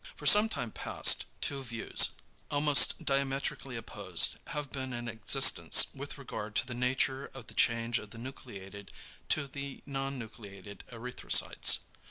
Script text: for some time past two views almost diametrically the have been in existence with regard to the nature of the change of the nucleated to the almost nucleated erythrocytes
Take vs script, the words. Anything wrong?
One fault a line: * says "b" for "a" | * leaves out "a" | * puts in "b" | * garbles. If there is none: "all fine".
* says "opposed" for "the"
* says "non" for "almost"